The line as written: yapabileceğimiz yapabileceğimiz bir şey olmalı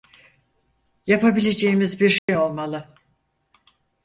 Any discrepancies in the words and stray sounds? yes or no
yes